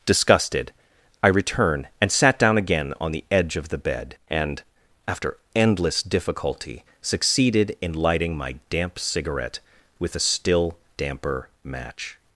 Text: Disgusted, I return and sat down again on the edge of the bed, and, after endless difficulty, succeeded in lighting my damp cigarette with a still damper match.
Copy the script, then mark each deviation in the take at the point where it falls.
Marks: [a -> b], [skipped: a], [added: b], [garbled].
Disgusted, I return and sat down again on the edge of the bed, and, after endless difficulty, succeeded in lighting my damp cigarette with a still damper match.